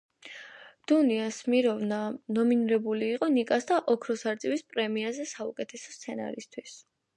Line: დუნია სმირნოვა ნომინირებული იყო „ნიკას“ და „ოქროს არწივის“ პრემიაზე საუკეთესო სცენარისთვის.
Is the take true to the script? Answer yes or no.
yes